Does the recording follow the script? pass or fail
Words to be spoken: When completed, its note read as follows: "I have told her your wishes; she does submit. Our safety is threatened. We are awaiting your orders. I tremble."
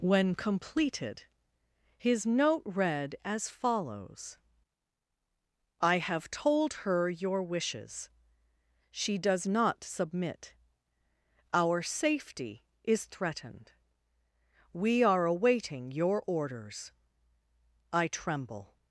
fail